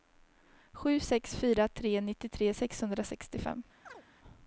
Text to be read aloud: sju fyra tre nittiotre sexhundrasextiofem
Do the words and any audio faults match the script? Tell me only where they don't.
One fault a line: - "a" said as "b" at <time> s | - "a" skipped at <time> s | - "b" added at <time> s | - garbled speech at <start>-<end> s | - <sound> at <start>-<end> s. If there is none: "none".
- "sex" added at 1.0 s
- chirp at 3.9-4.0 s